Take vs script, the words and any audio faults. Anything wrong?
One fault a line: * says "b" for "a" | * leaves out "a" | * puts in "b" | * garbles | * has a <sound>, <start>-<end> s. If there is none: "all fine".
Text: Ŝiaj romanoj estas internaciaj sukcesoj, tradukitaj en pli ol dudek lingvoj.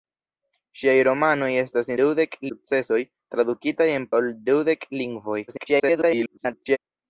* says "dudek" for "internaciaj"
* leaves out "pli"
* garbles